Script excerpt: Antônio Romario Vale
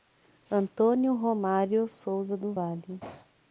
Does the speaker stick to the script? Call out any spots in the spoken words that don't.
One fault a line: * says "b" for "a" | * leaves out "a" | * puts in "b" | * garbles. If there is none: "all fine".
* puts in "Souza do"